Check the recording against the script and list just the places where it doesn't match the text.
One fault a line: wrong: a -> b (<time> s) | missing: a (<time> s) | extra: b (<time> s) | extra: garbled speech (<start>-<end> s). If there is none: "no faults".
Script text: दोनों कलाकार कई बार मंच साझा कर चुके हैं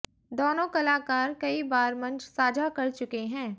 no faults